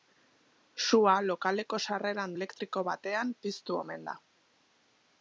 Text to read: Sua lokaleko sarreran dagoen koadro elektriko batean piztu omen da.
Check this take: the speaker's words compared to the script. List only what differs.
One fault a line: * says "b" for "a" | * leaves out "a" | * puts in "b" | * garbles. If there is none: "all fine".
* leaves out "dagoen koadro"